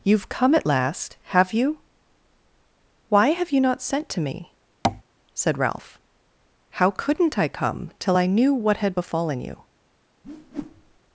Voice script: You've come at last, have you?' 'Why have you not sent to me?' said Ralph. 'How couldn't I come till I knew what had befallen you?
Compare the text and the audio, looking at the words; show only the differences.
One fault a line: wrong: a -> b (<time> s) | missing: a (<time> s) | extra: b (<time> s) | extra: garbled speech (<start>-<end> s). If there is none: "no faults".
no faults